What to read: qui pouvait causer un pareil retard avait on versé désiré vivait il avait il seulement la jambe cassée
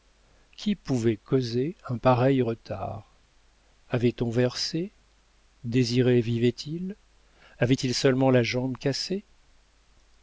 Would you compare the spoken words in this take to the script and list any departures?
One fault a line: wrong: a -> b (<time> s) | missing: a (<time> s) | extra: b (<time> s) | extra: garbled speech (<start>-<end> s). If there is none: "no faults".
no faults